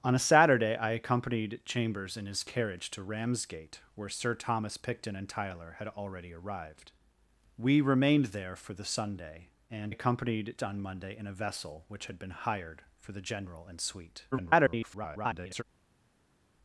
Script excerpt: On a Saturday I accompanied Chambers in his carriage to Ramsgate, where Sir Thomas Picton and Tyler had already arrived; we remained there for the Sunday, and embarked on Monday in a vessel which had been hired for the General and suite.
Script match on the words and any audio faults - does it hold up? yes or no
no